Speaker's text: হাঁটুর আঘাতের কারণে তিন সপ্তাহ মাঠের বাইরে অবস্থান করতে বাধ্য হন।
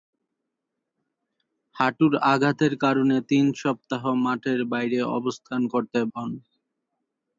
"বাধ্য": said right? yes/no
no